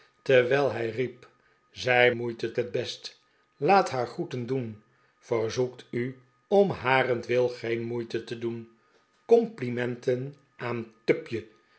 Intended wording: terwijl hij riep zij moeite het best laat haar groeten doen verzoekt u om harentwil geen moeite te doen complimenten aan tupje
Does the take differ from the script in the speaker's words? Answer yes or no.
no